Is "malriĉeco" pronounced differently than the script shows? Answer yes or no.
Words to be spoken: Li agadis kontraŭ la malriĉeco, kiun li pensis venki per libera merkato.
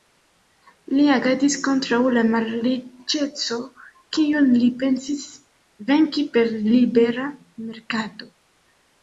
no